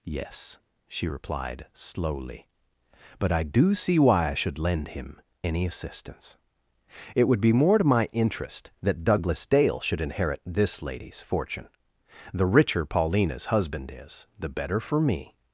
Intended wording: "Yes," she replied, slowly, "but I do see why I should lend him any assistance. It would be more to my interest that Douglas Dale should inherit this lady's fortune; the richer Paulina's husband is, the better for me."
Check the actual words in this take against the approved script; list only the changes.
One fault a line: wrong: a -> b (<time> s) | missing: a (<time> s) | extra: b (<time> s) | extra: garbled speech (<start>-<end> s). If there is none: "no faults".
no faults